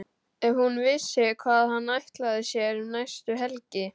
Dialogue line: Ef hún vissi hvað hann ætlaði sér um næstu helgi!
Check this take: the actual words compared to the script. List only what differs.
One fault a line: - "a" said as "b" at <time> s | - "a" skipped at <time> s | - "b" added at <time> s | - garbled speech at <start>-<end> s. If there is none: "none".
none